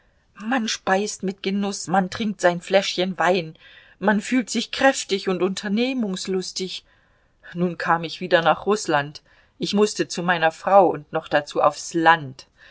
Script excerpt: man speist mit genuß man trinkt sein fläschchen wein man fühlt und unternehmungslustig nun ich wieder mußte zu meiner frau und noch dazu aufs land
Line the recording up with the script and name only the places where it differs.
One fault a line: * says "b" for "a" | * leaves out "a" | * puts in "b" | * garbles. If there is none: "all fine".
* puts in "sich kräftig"
* puts in "kam"
* puts in "nach rußland ich"